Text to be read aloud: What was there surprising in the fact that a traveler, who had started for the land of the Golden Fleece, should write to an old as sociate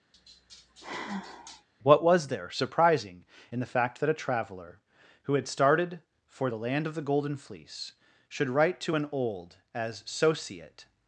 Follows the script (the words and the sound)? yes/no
no